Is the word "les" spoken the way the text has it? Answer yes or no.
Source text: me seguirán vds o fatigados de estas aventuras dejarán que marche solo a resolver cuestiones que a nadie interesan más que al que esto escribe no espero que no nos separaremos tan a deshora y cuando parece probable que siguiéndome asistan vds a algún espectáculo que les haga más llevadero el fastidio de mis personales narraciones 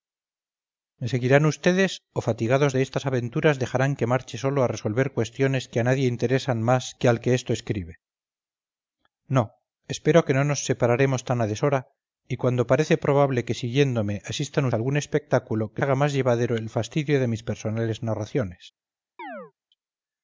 no